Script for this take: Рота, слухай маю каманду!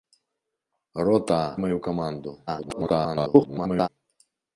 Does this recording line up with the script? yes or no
no